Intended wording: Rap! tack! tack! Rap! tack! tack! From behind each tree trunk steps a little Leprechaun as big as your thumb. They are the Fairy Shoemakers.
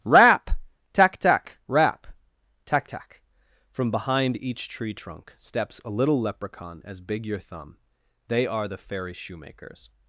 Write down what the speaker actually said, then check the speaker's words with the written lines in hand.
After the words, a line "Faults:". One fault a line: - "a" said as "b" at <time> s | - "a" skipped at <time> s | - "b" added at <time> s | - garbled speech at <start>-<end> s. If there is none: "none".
Rap! tack! tack! Rap! tack! tack! From behind each tree trunk steps a little Leprechaun as big your thumb. They are the Fairy Shoemakers.
Faults:
- "as" skipped at 7.3 s